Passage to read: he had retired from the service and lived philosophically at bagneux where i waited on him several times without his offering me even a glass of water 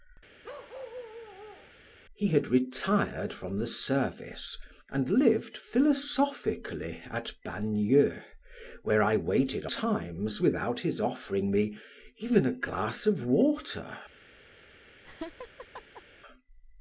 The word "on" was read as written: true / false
false